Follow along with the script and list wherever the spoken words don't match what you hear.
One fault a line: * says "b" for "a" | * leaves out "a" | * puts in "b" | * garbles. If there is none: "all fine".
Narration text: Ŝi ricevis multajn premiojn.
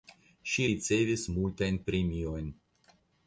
all fine